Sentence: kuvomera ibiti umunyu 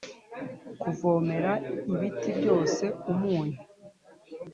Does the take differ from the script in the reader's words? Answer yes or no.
yes